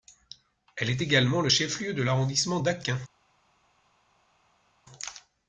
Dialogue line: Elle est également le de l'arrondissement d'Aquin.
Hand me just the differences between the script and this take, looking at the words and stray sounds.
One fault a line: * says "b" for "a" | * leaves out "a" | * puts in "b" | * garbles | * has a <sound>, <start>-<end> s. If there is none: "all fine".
* puts in "chef lieu"